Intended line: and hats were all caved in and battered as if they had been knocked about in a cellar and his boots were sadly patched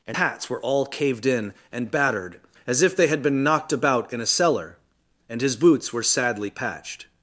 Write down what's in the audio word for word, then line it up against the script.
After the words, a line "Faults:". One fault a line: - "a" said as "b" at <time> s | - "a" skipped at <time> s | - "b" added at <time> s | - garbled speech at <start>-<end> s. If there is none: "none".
and hats were all caved in and battered as if they had been knocked about in a cellar and his boots were sadly patched
Faults:
none